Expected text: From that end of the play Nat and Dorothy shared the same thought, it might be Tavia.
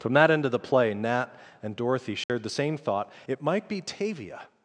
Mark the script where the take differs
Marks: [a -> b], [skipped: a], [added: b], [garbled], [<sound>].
From that end of the play Nat and Dorothy shared [dropout] the same thought, it might be Tavia.